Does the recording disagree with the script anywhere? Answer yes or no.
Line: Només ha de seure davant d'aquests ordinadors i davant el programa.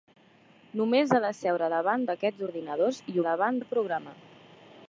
no